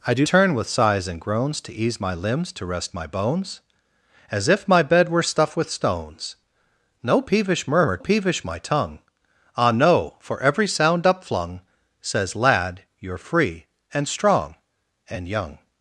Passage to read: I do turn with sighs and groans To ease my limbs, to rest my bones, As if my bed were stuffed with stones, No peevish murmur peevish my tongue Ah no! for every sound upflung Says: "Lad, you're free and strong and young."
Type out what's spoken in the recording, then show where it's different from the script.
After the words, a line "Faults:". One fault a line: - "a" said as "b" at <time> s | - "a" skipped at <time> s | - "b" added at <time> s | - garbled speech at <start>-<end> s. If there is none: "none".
I do turn with sighs and groans To ease my limbs, to rest my bones, As if my bed were stuffed with stones, No peevish murmur peevish my tongue Ah no! for every sound upflung Says: "Lad, you're free and strong and young."
Faults:
none